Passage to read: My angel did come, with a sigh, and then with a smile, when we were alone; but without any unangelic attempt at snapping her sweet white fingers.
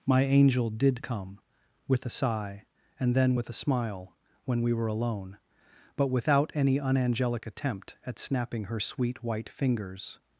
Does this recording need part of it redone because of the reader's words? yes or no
no